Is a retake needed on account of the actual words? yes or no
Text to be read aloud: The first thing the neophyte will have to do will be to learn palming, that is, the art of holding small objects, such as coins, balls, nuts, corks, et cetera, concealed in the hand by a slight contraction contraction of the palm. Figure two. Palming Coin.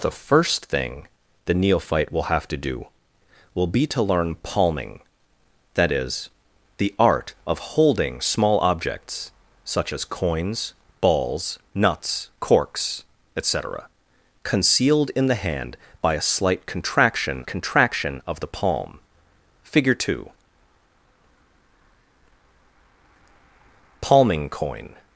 no